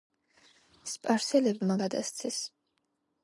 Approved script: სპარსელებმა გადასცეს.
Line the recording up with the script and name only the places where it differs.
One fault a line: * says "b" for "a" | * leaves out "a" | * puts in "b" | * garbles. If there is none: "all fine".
all fine